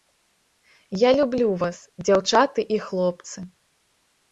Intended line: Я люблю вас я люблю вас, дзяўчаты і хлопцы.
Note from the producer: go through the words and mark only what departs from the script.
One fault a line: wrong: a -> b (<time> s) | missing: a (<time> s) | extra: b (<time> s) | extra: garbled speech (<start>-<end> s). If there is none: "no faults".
missing: я люблю вас (1.8 s)